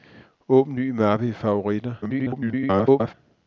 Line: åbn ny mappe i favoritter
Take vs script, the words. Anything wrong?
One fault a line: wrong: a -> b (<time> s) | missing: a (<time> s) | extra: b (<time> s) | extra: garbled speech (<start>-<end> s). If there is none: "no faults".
extra: garbled speech (2.0-3.1 s)